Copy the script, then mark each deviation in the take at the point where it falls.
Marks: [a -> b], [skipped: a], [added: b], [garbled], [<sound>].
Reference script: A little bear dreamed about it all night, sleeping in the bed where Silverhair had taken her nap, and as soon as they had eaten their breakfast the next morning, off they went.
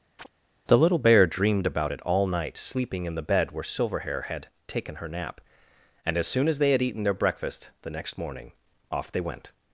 [chirp] [A -> The] little bear dreamed about it all night, sleeping in the bed where Silverhair had taken her nap, and as soon as they had eaten their breakfast the next morning, off they went.